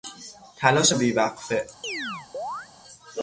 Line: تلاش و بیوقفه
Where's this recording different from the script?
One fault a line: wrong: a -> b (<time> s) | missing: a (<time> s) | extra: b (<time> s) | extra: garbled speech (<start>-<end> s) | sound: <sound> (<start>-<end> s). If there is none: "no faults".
sound: chirp (1.8-2.7 s)